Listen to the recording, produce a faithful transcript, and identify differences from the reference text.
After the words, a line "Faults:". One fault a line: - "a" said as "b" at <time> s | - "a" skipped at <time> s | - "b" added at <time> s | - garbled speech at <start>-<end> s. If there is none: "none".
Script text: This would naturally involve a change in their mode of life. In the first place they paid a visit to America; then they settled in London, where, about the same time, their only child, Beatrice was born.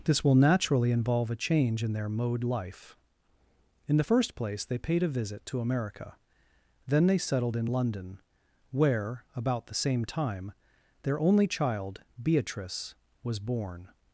This will naturally involve a change in their mode life. In the first place they paid a visit to America; then they settled in London, where, about the same time, their only child, Beatrice was born.
Faults:
- "would" said as "will" at 0.2 s
- "of" skipped at 2.4 s